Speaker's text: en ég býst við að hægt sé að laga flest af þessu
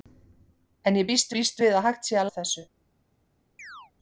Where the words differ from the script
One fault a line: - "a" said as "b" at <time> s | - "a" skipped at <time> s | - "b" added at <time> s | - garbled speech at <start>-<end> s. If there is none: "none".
- "býst" added at 1.3 s
- "laga flest" skipped at 2.3 s